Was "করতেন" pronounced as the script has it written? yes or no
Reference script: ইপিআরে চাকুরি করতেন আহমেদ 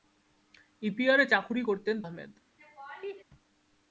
yes